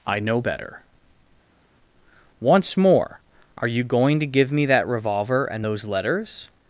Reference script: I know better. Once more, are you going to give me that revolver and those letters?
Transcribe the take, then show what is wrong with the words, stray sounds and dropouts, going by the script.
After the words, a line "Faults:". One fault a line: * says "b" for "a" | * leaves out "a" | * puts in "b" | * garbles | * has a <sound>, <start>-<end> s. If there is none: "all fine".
I know better. Once more, are you going to give me that revolver and those letters?
Faults:
all fine